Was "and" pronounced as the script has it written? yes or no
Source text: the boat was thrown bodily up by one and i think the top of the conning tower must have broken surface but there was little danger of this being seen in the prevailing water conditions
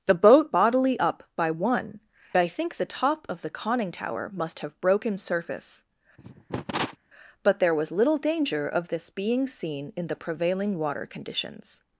no